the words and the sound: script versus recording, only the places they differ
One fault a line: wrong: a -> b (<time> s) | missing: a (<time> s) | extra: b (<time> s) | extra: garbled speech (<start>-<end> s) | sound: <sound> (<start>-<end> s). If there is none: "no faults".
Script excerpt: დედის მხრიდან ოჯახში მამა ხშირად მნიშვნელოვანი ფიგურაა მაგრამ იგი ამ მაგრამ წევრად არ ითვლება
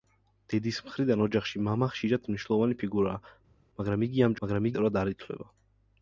no faults